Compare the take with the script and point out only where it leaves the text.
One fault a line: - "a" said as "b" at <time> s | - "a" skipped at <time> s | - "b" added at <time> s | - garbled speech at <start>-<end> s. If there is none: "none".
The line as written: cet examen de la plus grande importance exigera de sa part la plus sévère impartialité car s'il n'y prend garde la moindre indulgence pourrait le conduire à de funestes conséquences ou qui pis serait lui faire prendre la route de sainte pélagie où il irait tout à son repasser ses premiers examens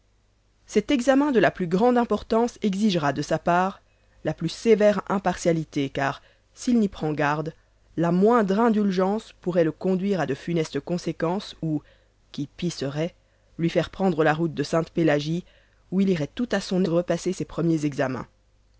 none